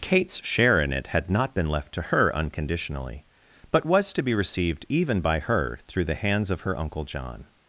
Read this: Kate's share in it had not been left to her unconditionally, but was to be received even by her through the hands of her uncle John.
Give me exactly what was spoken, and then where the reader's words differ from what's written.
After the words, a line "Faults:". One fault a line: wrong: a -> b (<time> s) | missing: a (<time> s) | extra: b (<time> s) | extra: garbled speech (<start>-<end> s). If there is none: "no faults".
Kate's share in it had not been left to her unconditionally, but was to be received even by her through the hands of her uncle John.
Faults:
no faults